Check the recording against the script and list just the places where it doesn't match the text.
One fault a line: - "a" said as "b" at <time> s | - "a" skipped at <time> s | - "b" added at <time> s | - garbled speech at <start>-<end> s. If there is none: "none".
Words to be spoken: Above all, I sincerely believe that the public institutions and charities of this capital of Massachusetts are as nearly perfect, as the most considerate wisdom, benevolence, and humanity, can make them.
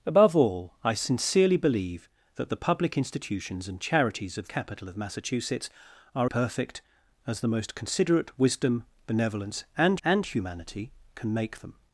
- "this" skipped at 4.5 s
- "as nearly" skipped at 6.3 s
- "and" added at 10.1 s